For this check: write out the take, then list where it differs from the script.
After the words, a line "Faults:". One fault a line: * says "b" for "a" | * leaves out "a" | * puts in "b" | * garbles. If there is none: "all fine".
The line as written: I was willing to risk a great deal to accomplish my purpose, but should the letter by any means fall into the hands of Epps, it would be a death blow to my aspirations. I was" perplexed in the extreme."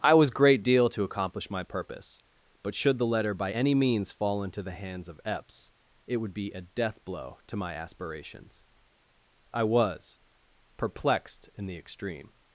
I was great deal to accomplish my purpose, but should the letter by any means fall into the hands of Epps, it would be a death blow to my aspirations. I was" perplexed in the extreme."
Faults:
* leaves out "willing to risk a"